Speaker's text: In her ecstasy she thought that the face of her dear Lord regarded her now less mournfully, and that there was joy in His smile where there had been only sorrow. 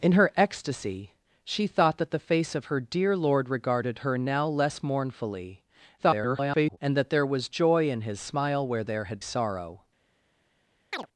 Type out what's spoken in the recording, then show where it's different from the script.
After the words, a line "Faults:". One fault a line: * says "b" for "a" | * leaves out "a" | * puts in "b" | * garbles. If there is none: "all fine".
In her ecstasy she thought that the face of her dear Lord regarded her now less mournfully, [garbled] and that there was joy in His smile where there had sorrow.
Faults:
* garbles
* leaves out "been only"